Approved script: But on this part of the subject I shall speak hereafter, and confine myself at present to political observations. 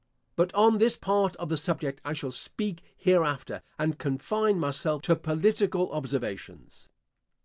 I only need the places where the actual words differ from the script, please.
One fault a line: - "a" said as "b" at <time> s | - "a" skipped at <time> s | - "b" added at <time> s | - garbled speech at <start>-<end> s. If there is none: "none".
- "at present" skipped at 5.0 s